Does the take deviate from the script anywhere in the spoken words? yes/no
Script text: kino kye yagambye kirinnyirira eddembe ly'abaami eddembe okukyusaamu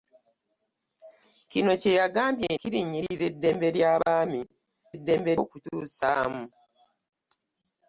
no